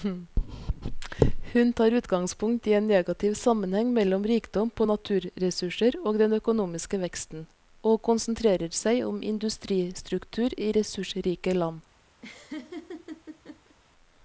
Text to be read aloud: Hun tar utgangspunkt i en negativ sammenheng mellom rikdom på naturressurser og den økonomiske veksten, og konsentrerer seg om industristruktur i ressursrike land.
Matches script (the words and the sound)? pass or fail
fail